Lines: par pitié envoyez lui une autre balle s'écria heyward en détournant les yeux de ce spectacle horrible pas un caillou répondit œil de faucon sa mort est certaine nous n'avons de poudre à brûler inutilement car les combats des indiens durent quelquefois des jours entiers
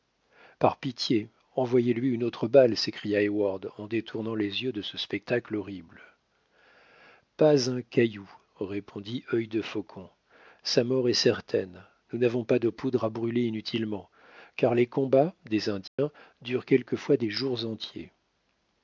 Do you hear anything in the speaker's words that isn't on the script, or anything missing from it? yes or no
yes